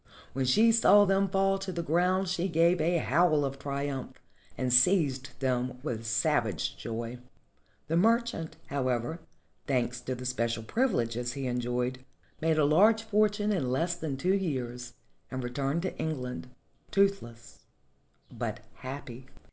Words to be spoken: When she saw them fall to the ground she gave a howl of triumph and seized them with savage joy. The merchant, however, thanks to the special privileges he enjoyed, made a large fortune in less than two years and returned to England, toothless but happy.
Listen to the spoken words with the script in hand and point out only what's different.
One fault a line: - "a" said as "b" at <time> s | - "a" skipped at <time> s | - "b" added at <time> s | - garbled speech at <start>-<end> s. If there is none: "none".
none